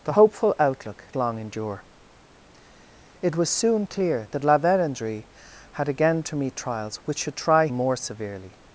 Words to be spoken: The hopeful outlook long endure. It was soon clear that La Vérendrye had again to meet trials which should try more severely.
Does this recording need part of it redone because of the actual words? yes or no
no